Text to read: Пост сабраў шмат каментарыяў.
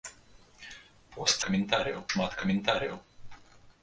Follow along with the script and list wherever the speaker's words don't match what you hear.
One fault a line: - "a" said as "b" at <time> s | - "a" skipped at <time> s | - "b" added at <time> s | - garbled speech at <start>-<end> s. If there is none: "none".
- "сабраў" said as "каментарыяў" at 1.5 s